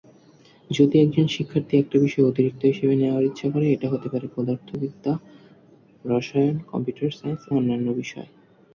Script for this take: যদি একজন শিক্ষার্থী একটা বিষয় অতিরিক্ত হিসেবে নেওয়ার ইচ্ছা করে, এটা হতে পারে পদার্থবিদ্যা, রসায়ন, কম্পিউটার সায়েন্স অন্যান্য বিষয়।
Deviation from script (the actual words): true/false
false